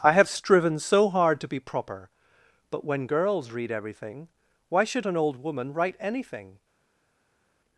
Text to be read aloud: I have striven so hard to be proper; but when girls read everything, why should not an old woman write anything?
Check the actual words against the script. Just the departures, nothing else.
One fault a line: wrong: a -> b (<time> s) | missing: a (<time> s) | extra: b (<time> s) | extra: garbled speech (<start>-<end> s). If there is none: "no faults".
missing: not (5.0 s)